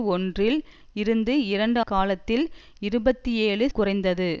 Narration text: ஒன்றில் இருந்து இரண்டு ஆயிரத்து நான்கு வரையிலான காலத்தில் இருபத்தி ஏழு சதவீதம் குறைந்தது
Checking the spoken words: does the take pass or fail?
fail